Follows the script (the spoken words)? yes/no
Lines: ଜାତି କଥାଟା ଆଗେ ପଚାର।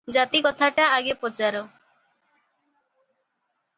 yes